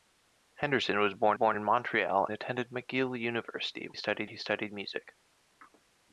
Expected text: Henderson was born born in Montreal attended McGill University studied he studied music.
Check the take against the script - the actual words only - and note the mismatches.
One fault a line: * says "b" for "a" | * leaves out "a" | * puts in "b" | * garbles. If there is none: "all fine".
all fine